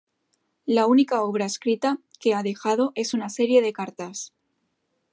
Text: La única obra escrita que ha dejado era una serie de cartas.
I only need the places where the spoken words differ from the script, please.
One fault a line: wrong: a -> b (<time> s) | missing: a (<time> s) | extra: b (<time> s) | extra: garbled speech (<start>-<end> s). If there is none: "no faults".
wrong: era -> es (3.0 s)